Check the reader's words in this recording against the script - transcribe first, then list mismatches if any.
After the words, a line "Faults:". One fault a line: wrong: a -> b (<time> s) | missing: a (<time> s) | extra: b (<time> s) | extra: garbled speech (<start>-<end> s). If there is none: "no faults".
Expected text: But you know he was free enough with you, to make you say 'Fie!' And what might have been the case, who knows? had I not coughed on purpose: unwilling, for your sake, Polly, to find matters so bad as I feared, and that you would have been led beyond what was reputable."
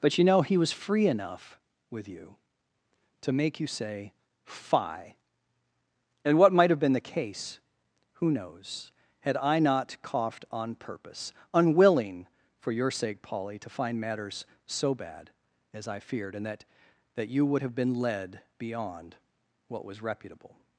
But you know he was free enough with you, to make you say 'Fie!' And what might have been the case, who knows? had I not coughed on purpose: unwilling, for your sake, Polly, to find matters so bad as I feared, and that that you would have been led beyond what was reputable."
Faults:
extra: that (17.1 s)